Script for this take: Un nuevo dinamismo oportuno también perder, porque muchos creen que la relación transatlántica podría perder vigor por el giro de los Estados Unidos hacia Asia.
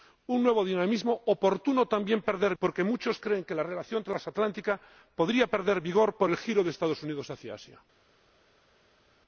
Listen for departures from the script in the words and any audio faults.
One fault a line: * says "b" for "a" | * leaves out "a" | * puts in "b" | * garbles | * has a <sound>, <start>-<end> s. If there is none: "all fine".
all fine